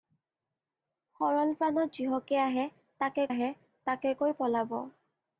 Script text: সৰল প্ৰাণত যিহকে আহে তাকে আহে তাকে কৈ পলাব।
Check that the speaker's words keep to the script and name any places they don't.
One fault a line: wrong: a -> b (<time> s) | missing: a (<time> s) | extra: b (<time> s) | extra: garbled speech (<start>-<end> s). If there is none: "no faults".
no faults